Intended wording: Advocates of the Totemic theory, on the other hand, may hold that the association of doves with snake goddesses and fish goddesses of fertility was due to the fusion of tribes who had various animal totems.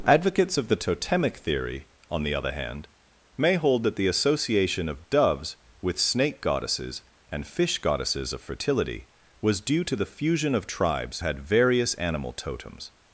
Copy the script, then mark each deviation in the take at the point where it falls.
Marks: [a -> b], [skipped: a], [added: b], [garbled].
Advocates of the Totemic theory, on the other hand, may hold that the association of doves with snake goddesses and fish goddesses of fertility was due to the fusion of tribes [skipped: who] had various animal totems.